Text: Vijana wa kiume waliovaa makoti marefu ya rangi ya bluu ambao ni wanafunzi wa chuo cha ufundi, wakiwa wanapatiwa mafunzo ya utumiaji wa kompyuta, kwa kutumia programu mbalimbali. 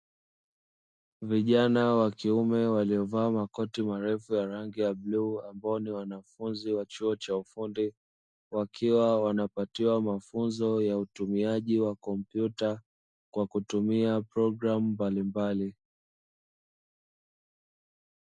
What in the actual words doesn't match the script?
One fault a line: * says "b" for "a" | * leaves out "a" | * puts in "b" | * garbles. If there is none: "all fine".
all fine